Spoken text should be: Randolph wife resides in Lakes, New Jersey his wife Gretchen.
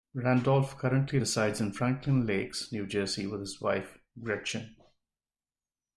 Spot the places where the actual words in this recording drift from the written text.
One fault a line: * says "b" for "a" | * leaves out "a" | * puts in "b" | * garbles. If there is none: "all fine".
* says "currently" for "wife"
* puts in "Franklin"
* puts in "with"